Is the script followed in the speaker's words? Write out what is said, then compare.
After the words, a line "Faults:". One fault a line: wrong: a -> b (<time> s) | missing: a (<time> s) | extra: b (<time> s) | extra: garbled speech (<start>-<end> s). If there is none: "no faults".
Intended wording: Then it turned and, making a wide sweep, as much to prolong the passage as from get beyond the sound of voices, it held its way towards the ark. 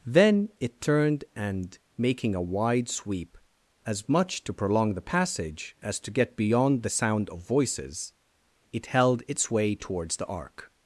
Then it turned and, making a wide sweep, as much to prolong the passage as to get beyond the sound of voices, it held its way towards the ark.
Faults:
wrong: from -> to (6.0 s)